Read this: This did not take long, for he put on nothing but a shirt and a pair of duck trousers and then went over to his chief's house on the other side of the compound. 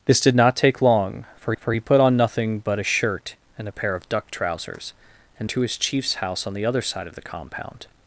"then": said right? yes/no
no